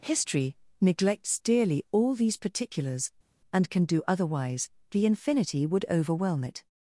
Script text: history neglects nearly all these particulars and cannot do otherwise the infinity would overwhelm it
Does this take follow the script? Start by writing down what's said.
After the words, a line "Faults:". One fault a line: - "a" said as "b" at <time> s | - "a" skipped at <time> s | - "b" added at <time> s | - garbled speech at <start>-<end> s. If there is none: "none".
history neglects dearly all these particulars and can do otherwise the infinity would overwhelm it
Faults:
- "nearly" said as "dearly" at 1.4 s
- "cannot" said as "can" at 3.7 s